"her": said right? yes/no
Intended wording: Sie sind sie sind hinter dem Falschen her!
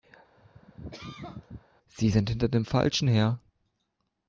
yes